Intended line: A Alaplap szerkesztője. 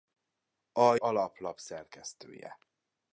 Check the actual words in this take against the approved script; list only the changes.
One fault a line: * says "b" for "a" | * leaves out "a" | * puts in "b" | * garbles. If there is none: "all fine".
all fine